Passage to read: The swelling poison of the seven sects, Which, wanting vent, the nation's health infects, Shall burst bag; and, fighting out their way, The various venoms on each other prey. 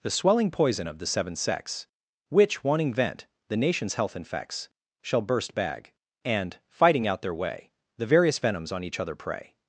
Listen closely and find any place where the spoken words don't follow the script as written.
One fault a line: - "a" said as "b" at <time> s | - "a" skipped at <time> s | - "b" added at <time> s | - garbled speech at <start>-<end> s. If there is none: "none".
none